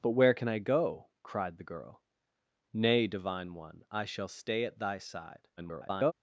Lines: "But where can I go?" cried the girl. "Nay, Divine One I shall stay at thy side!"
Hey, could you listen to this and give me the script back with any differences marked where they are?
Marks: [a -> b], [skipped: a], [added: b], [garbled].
"But where can I go?" cried the girl. "Nay, Divine One I shall stay at thy side!" [garbled]